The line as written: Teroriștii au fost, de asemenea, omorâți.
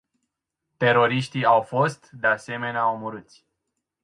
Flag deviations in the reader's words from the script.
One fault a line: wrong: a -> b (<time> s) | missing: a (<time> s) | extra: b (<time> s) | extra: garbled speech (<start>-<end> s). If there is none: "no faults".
no faults